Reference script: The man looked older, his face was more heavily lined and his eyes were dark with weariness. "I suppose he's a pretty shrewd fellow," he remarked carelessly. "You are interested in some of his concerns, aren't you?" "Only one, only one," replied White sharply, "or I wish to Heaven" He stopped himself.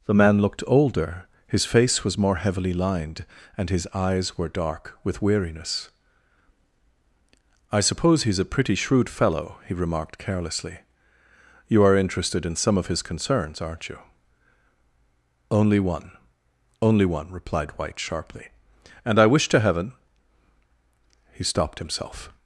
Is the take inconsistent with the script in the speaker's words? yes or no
yes